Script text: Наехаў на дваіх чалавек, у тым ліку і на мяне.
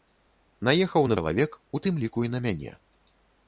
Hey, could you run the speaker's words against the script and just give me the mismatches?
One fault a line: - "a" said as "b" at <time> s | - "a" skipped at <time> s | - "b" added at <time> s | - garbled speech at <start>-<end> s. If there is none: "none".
- "дваіх" skipped at 1.2 s